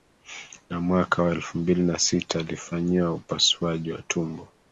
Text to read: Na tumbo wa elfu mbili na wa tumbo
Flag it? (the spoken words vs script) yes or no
yes